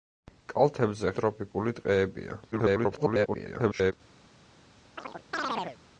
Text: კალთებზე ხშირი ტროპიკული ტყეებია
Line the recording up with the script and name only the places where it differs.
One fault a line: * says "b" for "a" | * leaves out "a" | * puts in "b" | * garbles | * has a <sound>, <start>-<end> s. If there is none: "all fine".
* leaves out "ხშირი"
* garbles
* has a chirp, 5.0-5.8 s